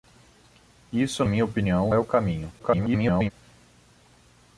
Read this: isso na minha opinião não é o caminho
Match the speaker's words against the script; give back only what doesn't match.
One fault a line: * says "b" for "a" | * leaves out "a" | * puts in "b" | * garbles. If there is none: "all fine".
* leaves out "na"
* leaves out "não"
* garbles